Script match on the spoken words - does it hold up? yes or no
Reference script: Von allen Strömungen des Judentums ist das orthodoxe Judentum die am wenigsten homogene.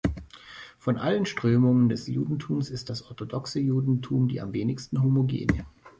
yes